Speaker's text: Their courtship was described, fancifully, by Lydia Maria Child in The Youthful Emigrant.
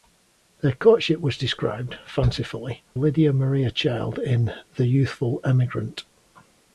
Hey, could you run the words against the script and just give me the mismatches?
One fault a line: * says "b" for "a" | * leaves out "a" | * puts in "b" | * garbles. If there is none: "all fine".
* leaves out "by"